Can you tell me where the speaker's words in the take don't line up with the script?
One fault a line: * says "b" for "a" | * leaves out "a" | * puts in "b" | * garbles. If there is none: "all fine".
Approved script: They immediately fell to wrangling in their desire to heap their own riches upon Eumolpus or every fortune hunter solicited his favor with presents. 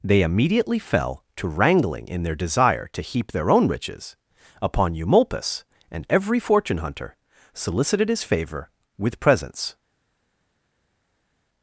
* says "and" for "or"